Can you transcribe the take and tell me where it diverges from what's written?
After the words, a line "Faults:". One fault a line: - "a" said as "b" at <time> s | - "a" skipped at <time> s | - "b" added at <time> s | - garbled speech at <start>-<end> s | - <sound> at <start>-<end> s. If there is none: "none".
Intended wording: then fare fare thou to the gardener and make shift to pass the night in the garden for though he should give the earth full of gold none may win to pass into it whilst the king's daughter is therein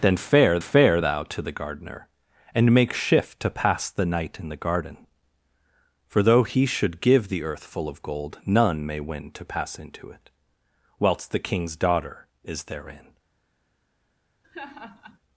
then fare fare thou to the gardener and make shift to pass the night in the garden for though he should give the earth full of gold none may win to pass into it whilst the king's daughter is therein
Faults:
- laugh at 14.4-15.2 s